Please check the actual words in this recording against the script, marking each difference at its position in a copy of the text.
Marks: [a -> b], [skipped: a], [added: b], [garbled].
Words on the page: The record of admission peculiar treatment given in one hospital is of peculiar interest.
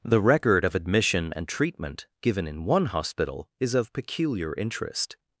The record of admission [peculiar -> and] treatment given in one hospital is of peculiar interest.